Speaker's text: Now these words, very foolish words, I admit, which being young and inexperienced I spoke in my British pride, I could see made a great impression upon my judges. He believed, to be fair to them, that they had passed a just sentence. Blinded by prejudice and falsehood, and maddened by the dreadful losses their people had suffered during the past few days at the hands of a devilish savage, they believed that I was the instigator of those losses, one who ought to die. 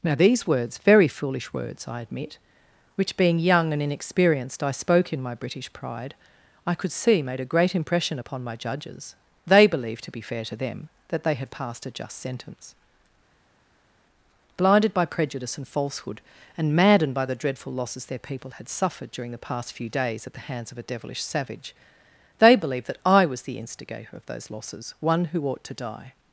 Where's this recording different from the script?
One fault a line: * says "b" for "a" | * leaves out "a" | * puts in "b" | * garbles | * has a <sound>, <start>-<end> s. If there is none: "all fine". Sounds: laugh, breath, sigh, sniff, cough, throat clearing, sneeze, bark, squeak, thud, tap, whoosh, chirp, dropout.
* says "They" for "He"